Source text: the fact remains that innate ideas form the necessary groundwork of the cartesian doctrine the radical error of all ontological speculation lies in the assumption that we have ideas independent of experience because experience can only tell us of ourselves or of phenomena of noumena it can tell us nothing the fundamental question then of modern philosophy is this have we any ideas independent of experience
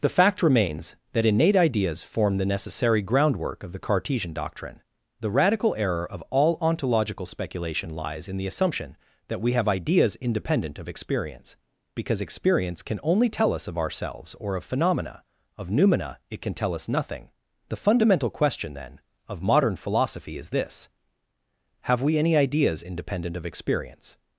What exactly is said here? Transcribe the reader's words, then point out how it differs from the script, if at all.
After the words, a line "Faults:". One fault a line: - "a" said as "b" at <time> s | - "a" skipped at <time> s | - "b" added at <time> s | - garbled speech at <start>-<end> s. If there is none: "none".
the fact remains that innate ideas form the necessary groundwork of the cartesian doctrine the radical error of all ontological speculation lies in the assumption that we have ideas independent of experience because experience can only tell us of ourselves or of phenomena of noumena it can tell us nothing the fundamental question then of modern philosophy is this have we any ideas independent of experience
Faults:
none